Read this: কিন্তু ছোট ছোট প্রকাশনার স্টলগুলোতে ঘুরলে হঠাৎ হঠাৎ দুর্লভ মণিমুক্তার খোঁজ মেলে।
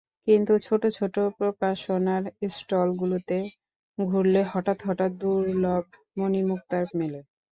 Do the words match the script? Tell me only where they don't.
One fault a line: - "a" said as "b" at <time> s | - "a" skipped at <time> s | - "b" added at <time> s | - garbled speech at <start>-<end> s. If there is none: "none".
- "খোঁজ" skipped at 6.8 s